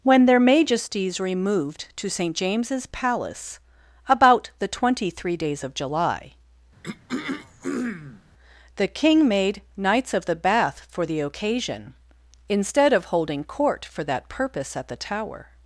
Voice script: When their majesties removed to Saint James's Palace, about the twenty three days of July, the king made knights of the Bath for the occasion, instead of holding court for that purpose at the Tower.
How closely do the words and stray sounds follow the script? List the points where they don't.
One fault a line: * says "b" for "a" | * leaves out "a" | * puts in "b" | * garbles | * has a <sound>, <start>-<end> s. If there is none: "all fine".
* has a throat clearing, 6.8-8.2 s